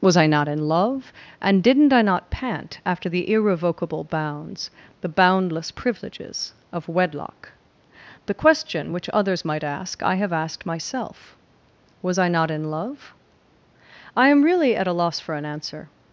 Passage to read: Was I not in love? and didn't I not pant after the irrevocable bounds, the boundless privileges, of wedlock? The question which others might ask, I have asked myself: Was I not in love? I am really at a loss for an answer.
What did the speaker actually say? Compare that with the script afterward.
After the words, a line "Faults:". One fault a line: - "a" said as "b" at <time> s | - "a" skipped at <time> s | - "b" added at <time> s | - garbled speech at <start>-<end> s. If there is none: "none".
Was I not in love? and didn't I not pant after the irrevocable bounds, the boundless privileges, of wedlock? The question which others might ask, I have asked myself: Was I not in love? I am really at a loss for an answer.
Faults:
none